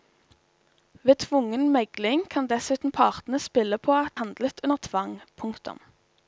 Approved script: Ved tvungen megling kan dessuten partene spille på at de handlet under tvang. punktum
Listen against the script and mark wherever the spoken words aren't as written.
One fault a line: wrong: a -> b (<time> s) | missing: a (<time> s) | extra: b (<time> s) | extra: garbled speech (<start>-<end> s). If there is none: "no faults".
missing: de (4.2 s)